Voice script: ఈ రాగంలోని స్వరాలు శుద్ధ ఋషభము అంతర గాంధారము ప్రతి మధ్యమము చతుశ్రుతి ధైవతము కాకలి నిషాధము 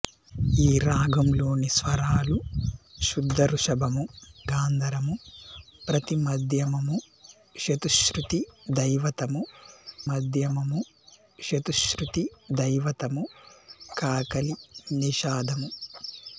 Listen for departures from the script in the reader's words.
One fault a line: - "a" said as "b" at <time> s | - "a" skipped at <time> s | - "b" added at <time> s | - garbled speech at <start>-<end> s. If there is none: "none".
- "అంతర" skipped at 4.0 s
- "మధ్యమము చతుశ్రుతి ధైవతము" added at 10.1 s